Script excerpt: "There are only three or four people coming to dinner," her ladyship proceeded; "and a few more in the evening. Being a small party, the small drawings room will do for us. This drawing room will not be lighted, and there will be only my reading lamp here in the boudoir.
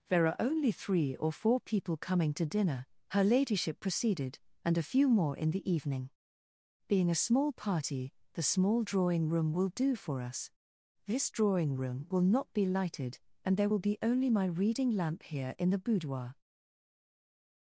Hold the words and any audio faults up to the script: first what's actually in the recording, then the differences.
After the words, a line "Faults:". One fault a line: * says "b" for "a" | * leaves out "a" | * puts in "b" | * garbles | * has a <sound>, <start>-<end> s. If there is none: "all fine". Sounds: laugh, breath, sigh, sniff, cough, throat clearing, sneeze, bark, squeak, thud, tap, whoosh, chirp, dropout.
"There are only three or four people coming to dinner," her ladyship proceeded; "and a few more in the evening. Being a small party, the small drawing room will do for us. This drawing room will not be lighted, and there will be only my reading lamp here in the boudoir.
Faults:
* says "drawing" for "drawings"